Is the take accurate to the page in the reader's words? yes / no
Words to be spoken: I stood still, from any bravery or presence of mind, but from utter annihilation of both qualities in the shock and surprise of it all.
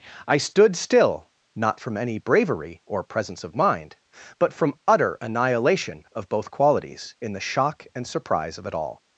no